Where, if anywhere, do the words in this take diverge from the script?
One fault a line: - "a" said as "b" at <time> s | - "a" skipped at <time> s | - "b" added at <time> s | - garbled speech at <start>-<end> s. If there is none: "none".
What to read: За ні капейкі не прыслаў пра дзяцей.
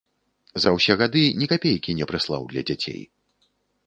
- "ўсе гады" added at 0.8 s
- "пра" said as "для" at 2.5 s